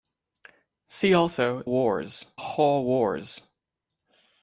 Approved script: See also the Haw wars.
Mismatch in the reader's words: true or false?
true